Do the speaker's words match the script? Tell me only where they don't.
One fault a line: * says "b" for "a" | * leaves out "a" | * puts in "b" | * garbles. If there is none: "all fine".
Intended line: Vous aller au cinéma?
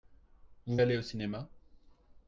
all fine